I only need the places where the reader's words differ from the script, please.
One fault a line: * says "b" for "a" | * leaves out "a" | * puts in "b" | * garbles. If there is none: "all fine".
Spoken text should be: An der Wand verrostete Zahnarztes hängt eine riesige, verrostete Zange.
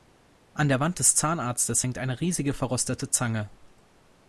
* says "des" for "verrostete"